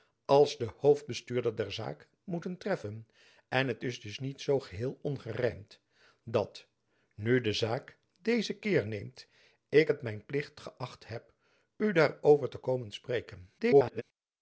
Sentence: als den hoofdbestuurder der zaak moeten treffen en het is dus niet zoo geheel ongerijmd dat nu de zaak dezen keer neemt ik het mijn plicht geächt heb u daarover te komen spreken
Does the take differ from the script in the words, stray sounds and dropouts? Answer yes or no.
yes